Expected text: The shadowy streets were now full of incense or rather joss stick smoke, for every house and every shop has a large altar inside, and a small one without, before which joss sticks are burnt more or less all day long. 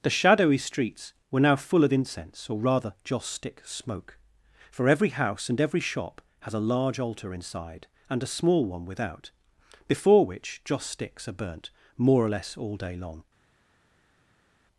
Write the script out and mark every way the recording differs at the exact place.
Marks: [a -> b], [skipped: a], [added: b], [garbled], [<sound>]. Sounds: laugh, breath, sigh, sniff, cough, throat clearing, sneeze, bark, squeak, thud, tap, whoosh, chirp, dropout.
The shadowy streets were now full of incense or rather joss stick smoke, for every house and every shop has a large altar inside, and a small one without, before which joss sticks are burnt more or less all day long.